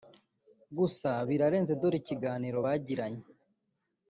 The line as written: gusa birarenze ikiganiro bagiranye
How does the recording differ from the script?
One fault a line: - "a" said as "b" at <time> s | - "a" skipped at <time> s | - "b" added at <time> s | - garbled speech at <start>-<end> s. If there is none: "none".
- "dore" added at 1.8 s